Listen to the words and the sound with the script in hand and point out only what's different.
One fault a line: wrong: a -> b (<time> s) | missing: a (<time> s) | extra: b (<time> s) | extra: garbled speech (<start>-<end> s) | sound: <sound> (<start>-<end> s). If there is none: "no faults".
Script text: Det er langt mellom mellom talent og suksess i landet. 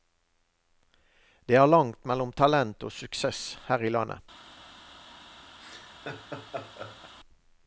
missing: mellom (2.3 s)
extra: her (3.7 s)
sound: laugh (5.6-7.1 s)